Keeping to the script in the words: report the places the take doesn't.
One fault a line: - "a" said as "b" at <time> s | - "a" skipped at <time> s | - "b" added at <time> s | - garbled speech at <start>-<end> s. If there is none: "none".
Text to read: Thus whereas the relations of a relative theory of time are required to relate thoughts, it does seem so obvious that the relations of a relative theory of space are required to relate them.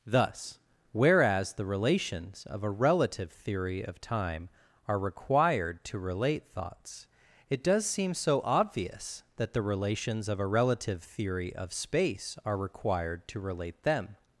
none